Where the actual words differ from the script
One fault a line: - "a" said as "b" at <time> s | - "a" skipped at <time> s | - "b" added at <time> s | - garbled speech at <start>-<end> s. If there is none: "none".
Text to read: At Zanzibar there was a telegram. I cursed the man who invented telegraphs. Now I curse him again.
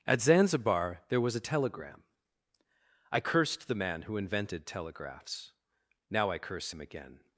none